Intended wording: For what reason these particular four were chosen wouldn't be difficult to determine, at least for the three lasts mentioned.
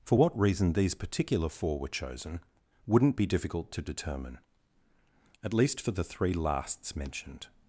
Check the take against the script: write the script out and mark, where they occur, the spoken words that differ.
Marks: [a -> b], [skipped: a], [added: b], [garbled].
For what reason these particular four were chosen wouldn't be difficult to determine, at least for the three lasts mentioned.